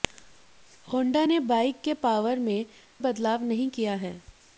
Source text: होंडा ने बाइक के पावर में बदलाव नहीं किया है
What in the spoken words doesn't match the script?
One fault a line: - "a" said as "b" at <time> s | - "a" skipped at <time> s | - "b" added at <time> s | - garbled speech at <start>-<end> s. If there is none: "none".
none